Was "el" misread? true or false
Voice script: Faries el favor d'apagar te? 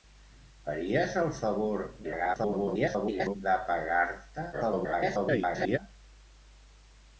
false